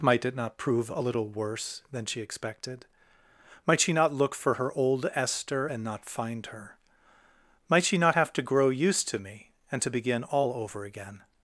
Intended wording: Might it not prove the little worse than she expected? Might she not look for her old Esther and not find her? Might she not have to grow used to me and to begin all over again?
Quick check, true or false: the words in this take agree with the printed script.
false